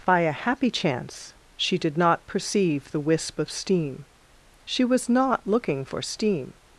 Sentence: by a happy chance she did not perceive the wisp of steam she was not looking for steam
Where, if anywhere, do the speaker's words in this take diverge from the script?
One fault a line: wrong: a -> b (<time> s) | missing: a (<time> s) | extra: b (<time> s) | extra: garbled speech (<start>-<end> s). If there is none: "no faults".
no faults